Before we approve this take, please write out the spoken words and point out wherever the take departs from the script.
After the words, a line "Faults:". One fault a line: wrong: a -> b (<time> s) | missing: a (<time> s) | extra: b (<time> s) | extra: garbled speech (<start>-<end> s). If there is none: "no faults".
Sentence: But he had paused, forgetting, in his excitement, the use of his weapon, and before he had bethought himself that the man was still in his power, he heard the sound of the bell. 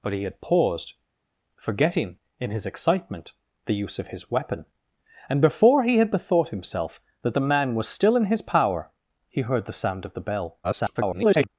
But he had paused, forgetting, in his excitement, the use of his weapon, and before he had bethought himself that the man was still in his power, he heard the sound of the bell. [garbled]
Faults:
extra: garbled speech (10.6-11.5 s)